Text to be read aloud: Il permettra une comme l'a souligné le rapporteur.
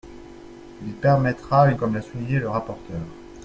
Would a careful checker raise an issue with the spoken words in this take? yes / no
no